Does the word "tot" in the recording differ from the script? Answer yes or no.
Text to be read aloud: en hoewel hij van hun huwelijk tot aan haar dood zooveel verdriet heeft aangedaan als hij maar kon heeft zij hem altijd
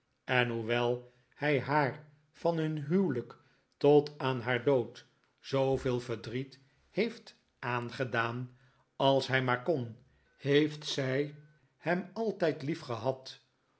no